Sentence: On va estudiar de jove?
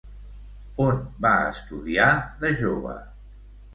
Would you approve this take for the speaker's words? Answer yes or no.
yes